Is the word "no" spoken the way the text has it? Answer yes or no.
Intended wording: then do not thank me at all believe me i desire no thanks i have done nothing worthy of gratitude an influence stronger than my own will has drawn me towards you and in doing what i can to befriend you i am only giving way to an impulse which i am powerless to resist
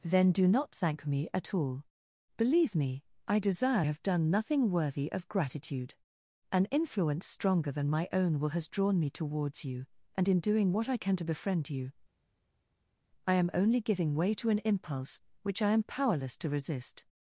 no